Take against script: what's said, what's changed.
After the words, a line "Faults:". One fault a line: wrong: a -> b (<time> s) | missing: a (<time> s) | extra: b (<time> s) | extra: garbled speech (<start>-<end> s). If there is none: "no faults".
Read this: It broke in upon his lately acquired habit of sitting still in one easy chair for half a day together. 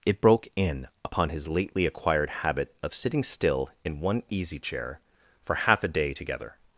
It broke in upon his lately acquired habit of sitting still in one easy chair for half a day together.
Faults:
no faults